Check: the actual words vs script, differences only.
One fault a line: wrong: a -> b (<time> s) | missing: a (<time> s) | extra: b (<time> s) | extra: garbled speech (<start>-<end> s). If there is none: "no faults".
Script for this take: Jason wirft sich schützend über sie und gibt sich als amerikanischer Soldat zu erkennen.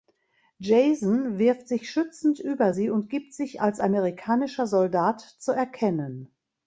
no faults